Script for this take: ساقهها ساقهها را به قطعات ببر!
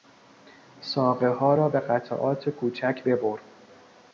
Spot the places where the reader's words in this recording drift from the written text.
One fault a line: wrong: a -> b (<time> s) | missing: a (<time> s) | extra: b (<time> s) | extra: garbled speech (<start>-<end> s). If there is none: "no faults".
missing: ساقهها (1.6 s)
extra: کوچک (2.5 s)